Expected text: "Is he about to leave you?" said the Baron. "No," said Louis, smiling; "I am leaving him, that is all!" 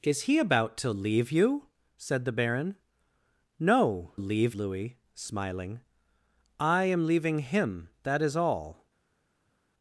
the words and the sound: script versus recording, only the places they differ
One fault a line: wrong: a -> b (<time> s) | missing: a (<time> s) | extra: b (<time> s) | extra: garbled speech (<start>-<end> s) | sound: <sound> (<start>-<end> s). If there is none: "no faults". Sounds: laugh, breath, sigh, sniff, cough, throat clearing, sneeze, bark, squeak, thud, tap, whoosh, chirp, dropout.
wrong: said -> leave (4.1 s)